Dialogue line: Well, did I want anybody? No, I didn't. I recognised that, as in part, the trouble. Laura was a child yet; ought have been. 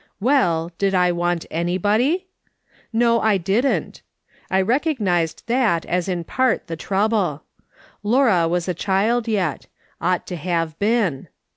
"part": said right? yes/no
yes